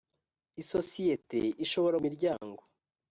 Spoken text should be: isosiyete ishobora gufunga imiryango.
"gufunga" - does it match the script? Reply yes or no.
no